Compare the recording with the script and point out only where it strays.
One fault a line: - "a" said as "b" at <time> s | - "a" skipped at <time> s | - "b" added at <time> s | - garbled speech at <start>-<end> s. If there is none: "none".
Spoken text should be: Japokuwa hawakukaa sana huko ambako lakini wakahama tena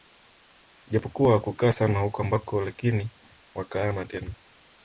none